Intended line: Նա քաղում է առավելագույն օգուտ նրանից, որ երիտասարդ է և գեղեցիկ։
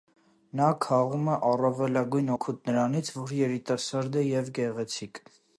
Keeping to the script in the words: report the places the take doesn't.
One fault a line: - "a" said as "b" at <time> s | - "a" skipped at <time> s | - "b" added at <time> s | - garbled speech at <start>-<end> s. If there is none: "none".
none